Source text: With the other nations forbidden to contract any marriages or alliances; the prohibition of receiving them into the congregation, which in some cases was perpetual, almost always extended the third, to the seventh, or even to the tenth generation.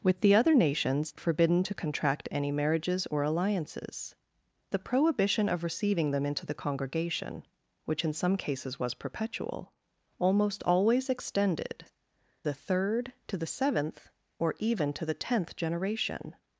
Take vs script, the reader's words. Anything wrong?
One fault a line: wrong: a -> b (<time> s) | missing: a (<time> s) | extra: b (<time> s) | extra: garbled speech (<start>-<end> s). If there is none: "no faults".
no faults